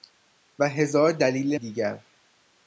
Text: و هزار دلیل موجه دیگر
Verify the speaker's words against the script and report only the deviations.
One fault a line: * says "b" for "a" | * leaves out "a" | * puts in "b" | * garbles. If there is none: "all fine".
* leaves out "موجه"